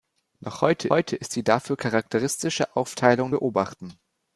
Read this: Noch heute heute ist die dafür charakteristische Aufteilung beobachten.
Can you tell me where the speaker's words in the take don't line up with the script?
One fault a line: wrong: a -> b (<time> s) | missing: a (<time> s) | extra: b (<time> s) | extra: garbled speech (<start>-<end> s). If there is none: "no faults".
no faults